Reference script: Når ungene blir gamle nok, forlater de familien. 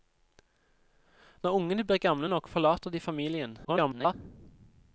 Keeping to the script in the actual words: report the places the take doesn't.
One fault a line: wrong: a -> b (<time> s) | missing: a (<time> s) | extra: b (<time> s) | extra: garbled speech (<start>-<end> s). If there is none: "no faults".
extra: garbled speech (3.6-4.1 s)